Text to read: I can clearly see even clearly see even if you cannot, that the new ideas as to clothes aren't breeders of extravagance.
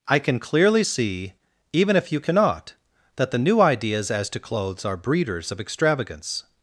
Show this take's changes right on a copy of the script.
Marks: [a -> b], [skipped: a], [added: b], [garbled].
I can clearly see even [skipped: clearly see even] if you cannot, that the new ideas as to clothes [aren't -> are] breeders of extravagance.